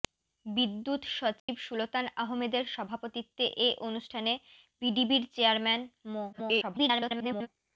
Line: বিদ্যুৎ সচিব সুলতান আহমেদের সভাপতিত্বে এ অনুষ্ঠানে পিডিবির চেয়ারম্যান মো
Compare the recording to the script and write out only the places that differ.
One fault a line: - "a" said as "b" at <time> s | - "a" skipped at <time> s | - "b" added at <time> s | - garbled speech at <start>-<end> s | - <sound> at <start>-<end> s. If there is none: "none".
- dropout at 1.4-1.5 s
- garbled speech at 6.3-7.5 s